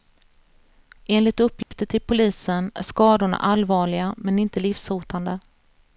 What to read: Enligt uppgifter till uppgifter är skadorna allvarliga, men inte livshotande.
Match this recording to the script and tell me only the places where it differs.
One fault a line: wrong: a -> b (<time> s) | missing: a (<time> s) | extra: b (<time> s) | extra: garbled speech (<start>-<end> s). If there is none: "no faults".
wrong: uppgifter -> polisen (2.0 s)